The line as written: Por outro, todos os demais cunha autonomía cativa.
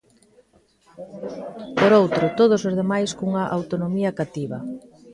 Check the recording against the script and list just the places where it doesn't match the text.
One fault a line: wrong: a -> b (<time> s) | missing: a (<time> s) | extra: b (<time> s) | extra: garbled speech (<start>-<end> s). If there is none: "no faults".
no faults